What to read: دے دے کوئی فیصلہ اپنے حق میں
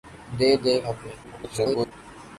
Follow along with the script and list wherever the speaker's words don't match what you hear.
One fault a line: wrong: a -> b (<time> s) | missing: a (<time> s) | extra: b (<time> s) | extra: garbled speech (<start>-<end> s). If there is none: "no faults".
missing: کوئی فیصلہ اپنے (0.7 s)
extra: garbled speech (1.2-1.9 s)